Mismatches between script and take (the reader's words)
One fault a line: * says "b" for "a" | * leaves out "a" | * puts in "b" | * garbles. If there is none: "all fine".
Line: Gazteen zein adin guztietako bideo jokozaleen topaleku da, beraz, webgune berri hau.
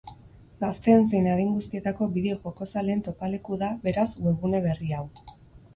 all fine